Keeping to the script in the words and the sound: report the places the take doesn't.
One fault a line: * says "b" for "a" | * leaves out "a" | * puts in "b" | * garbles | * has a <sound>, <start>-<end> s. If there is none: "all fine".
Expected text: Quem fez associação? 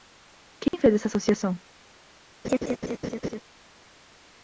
* has a dropout, 0.7-0.7 s
* puts in "essa"
* has a laugh, 2.4-3.4 s